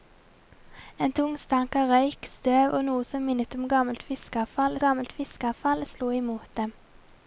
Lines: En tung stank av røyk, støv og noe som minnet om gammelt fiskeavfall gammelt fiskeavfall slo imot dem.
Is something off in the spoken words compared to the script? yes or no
no